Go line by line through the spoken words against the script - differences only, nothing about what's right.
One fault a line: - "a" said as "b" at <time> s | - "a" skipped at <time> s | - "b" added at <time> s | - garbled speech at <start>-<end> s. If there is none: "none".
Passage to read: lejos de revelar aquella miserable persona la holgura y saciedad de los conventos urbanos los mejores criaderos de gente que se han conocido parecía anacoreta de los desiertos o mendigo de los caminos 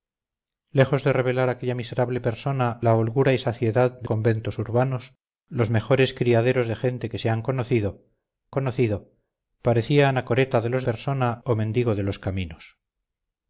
- "los" skipped at 4.1 s
- "conocido" added at 8.5 s
- "desiertos" said as "persona" at 10.8 s